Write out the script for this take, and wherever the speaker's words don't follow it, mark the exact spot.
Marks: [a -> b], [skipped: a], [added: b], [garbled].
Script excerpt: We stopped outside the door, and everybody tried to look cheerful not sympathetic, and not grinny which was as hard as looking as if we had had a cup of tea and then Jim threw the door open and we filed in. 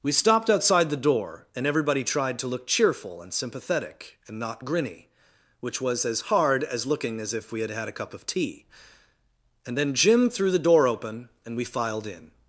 We stopped outside the door, and everybody tried to look cheerful [not -> and] sympathetic, and not grinny which was as hard as looking as if we had had a cup of tea and then Jim threw the door open and we filed in.